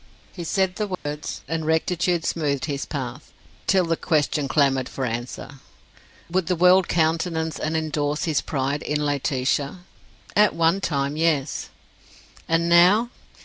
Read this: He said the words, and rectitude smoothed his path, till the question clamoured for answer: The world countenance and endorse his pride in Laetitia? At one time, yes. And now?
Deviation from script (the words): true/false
true